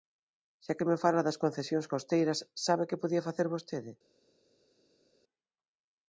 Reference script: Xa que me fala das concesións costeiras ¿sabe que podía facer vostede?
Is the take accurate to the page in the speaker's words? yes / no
yes